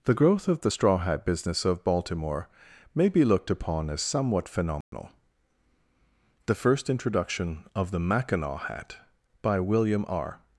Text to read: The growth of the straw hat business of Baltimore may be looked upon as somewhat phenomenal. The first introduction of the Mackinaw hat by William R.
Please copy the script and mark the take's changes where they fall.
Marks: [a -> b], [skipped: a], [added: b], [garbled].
The growth of the straw hat business of Baltimore may be looked upon as somewhat phenomenal. The first introduction of the Mackinaw hat by William R.